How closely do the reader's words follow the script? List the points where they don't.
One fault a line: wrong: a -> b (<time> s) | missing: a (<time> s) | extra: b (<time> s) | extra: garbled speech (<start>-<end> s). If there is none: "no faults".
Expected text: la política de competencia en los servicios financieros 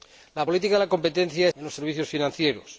no faults